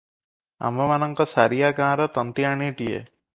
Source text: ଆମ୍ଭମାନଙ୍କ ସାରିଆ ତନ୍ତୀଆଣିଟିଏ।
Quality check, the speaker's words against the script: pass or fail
fail